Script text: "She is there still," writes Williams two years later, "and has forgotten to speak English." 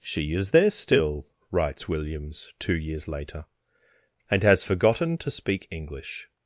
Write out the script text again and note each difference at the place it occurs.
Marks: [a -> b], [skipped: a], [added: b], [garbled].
"She is there still," writes Williams two years later, "and has forgotten to speak English."